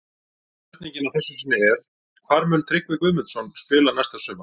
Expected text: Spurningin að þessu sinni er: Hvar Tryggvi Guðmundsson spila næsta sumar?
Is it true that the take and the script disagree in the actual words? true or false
true